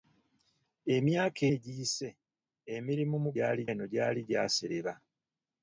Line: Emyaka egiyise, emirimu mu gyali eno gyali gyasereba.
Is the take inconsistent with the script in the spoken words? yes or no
no